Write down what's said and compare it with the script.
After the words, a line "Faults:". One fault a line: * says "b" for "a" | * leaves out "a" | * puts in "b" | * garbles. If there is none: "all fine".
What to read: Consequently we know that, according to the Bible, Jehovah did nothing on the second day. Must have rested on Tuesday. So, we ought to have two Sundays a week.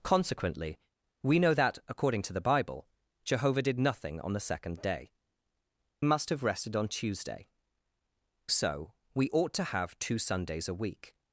Consequently we know that, according to the Bible, Jehovah did nothing on the second day. Must have rested on Tuesday. So, we ought to have two Sundays a week.
Faults:
all fine